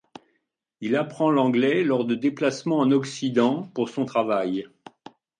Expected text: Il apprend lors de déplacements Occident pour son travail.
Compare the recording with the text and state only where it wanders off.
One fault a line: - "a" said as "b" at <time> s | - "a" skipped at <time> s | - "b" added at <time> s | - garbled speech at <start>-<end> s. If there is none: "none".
- "l'anglais" added at 1.3 s
- "en" added at 2.8 s